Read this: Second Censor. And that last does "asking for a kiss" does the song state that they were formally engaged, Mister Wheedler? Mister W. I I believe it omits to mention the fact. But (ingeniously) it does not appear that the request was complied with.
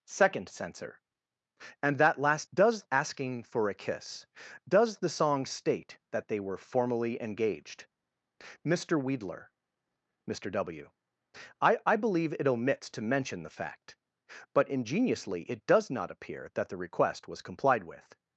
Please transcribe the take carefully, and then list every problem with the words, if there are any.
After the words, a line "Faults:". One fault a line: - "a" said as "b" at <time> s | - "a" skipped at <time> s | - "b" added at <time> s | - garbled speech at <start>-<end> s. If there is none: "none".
Second Censor. And that last does "asking for a kiss" does the song state that they were formally engaged, Mister Wheedler? Mister W. I I believe it omits to mention the fact. But (ingeniously) it does not appear that the request was complied with.
Faults:
none